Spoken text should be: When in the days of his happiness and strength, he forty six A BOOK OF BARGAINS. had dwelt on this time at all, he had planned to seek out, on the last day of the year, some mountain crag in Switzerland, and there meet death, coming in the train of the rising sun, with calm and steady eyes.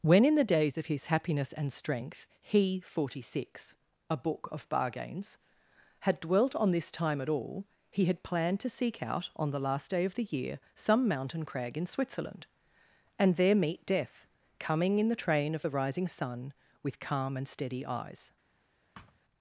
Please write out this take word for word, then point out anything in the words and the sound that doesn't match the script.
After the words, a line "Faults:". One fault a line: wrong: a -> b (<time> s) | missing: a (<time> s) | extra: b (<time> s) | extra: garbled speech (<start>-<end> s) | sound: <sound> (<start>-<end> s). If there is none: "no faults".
When in the days of his happiness and strength, he forty six A BOOK OF BARGAINS. had dwelt on this time at all, he had planned to seek out, on the last day of the year, some mountain crag in Switzerland, and there meet death, coming in the train of the rising sun, with calm and steady eyes.
Faults:
sound: thud (18.9-19.2 s)